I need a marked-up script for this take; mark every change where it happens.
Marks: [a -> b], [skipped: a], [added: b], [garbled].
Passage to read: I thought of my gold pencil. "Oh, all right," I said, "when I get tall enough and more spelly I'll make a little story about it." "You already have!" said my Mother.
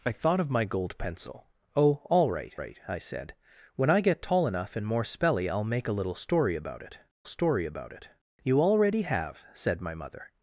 I thought of my gold pencil. "Oh, all right," [added: right] I said, "when I get tall enough and more spelly I'll make a little story about it." [added: story about it] "You already have!" said my Mother.